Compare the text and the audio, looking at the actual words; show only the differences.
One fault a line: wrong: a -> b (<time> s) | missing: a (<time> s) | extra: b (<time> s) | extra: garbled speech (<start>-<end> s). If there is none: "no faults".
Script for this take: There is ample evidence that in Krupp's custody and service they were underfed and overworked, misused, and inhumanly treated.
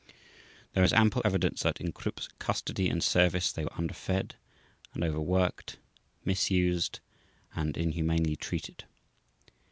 no faults